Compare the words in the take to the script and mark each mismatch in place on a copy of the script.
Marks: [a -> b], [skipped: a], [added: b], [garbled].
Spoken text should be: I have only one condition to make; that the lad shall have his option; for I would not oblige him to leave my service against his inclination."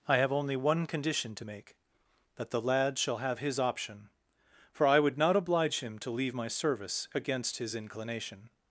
I have only one condition to make; that the lad shall have his option; for I would not oblige him to leave my service against his inclination."